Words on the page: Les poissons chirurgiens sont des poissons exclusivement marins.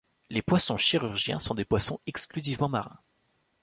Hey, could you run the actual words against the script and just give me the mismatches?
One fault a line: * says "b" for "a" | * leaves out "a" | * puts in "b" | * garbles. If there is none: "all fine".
all fine